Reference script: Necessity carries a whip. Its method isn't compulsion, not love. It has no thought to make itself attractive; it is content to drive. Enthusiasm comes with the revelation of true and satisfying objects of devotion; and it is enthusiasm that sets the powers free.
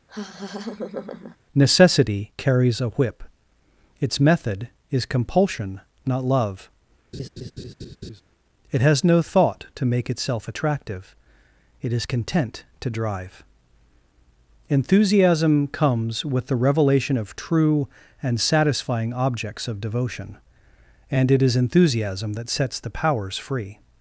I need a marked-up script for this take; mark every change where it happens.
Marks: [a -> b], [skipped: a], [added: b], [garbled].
Necessity carries a whip. Its method [isn't -> is] compulsion, not love. It has no thought to make itself attractive; it is content to drive. Enthusiasm comes with the revelation of true and satisfying objects of devotion; and it is enthusiasm that sets the powers free.